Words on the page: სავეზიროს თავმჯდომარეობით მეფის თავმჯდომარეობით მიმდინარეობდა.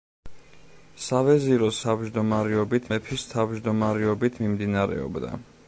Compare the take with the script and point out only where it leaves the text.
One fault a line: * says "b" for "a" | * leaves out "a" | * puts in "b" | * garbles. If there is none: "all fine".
all fine